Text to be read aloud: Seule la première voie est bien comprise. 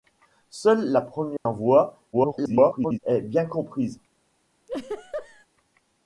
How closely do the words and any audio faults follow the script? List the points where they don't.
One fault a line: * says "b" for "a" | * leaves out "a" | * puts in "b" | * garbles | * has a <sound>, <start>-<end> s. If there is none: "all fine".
* has a dropout, 1.4-1.5 s
* garbles
* has a laugh, 4.7-5.5 s